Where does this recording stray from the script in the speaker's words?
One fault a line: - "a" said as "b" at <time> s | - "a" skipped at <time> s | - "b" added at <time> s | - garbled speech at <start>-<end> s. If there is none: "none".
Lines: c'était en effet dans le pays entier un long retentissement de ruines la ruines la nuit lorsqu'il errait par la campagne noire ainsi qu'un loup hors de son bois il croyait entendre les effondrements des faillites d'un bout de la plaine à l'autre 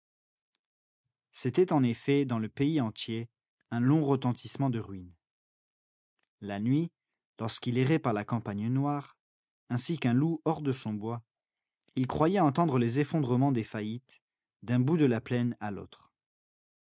- "ruines la" skipped at 6.6 s